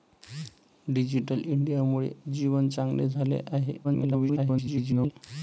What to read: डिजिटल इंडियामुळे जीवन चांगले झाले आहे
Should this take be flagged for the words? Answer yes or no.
yes